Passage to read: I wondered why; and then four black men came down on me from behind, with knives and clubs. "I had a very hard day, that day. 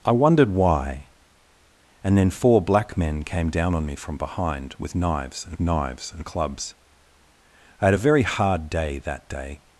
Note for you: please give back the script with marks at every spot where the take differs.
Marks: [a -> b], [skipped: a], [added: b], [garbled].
I wondered why; and then four black men came down on me from behind, with knives and [added: knives and] clubs. "I had a very hard day, that day.